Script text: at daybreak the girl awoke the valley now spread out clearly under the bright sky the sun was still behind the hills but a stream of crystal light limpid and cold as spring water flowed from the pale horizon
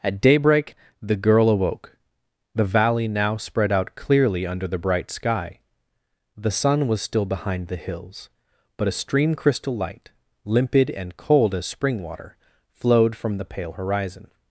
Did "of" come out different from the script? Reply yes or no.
yes